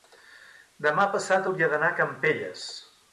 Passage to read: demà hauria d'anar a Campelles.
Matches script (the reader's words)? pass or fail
fail